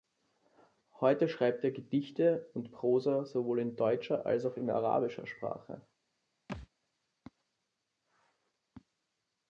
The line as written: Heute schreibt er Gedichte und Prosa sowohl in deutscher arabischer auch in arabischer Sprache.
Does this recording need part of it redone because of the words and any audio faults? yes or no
yes